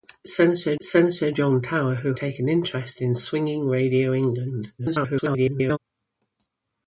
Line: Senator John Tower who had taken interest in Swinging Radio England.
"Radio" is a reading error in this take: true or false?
false